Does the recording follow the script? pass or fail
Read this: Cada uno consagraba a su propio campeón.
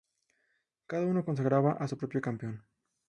pass